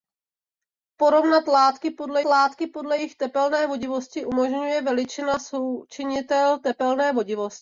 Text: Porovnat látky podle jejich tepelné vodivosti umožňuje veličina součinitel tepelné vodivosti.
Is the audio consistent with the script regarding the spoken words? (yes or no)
no